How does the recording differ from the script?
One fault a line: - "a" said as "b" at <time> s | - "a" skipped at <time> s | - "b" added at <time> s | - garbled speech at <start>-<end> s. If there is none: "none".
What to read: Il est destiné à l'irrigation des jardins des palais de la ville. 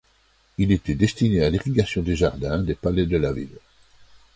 - "est" said as "était" at 0.7 s